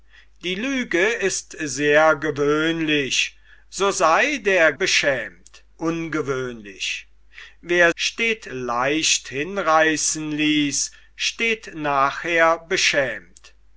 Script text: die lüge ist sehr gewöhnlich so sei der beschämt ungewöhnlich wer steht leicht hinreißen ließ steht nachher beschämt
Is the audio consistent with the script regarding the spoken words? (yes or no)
yes